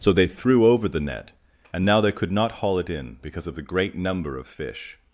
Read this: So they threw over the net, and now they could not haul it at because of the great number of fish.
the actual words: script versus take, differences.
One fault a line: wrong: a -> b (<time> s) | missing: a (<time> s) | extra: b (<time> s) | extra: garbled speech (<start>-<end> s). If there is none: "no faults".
wrong: at -> in (2.9 s)